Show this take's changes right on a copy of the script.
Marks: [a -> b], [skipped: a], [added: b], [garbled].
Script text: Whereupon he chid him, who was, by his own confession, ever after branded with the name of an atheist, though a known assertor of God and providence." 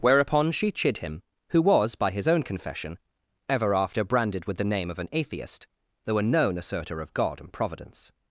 Whereupon [he -> she] chid him, who was, by his own confession, ever after branded with the name of an atheist, though a known assertor of God and providence."